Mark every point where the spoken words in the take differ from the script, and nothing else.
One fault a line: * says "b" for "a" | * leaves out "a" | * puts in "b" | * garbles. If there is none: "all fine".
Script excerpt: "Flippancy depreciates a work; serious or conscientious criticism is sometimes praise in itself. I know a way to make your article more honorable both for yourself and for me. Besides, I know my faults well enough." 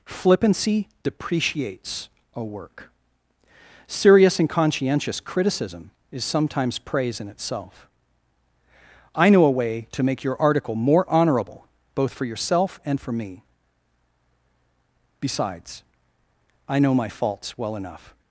* says "and" for "or"